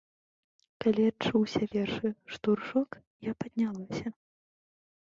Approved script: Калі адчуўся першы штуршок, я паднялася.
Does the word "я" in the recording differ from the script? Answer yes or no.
no